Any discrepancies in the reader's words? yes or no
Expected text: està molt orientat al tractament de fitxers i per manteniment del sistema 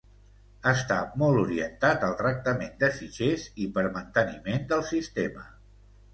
no